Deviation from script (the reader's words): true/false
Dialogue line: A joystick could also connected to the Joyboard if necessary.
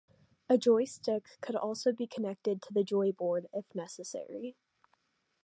true